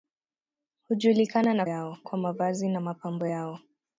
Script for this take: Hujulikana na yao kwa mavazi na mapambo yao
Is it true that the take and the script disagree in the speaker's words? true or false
false